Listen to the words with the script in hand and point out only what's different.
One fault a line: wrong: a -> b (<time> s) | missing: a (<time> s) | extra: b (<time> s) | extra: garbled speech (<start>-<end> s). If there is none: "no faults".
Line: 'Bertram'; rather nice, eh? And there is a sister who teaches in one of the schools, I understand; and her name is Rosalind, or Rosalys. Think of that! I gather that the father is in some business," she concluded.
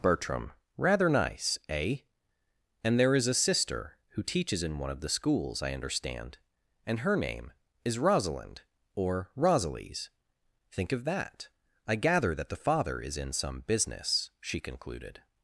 no faults